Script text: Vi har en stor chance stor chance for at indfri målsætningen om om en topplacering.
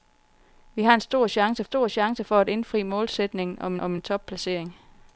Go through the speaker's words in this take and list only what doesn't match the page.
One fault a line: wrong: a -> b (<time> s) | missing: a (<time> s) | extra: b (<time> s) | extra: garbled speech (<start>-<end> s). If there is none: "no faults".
no faults